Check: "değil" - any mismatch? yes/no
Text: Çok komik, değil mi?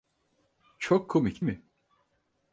yes